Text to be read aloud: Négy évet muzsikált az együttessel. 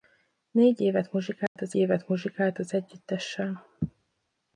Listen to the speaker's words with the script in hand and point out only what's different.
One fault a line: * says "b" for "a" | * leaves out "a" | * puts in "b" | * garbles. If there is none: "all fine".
* puts in "évet muzsikált az"